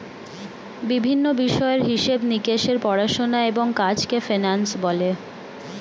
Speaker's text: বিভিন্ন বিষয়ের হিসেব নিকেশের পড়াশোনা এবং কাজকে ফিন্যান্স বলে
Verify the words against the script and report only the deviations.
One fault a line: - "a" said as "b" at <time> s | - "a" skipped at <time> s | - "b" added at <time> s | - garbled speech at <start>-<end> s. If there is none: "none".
none